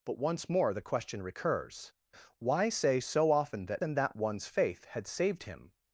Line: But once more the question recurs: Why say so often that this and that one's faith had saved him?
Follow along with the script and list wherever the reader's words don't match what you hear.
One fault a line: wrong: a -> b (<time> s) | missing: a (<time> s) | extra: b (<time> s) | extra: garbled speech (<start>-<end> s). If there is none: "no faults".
missing: this (3.8 s)